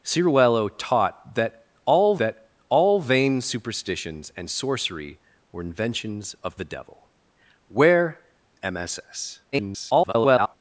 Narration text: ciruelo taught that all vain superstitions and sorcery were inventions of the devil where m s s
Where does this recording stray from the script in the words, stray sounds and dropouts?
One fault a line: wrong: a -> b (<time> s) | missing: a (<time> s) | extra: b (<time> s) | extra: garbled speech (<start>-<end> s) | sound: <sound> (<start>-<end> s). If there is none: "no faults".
extra: that all (2.2 s)
extra: garbled speech (9.5-10.6 s)